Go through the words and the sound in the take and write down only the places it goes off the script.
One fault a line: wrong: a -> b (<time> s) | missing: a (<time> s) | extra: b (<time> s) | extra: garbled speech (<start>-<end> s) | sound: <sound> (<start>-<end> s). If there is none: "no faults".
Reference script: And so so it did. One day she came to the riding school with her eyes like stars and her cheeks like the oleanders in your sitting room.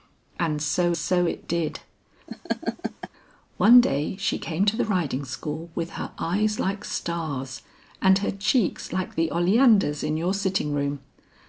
sound: laugh (2.3-3.1 s)